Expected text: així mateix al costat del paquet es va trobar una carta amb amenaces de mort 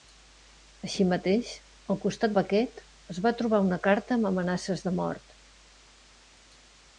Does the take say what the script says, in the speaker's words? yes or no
no